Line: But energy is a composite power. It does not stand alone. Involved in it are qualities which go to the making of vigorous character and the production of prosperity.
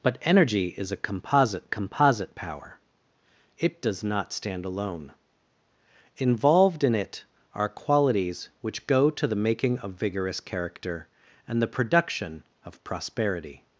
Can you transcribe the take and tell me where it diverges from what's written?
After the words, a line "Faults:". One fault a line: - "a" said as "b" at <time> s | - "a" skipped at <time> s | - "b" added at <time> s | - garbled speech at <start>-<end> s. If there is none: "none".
But energy is a composite composite power. It does not stand alone. Involved in it are qualities which go to the making of vigorous character and the production of prosperity.
Faults:
- "composite" added at 1.7 s